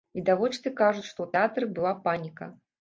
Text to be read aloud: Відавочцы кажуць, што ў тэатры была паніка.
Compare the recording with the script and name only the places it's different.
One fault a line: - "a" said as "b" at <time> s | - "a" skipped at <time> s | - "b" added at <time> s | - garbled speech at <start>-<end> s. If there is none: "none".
none